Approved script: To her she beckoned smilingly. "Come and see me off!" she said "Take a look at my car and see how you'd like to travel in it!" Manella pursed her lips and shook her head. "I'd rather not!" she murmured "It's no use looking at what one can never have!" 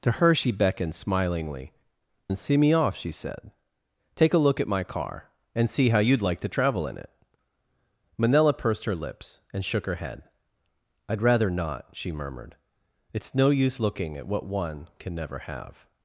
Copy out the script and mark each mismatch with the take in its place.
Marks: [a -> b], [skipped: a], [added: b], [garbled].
To her she beckoned smilingly. [skipped: "Come] and see me off!" she said "Take a look at my car and see how you'd like to travel in it!" Manella pursed her lips and shook her head. "I'd rather not!" she murmured "It's no use looking at what one can never have!"